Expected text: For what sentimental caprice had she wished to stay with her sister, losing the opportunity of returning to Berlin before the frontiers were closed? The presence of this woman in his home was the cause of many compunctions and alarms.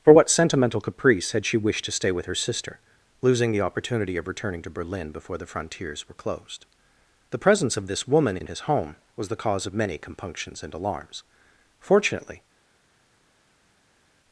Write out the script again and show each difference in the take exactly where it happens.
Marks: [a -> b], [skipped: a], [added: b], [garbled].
For what sentimental caprice had she wished to stay with her sister, losing the opportunity of returning to Berlin before the frontiers were closed? The presence of this woman in his home was the cause of many compunctions and alarms. [added: Fortunately]